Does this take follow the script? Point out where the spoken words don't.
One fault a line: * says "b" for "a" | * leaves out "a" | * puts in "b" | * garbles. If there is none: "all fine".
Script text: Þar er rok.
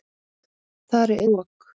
all fine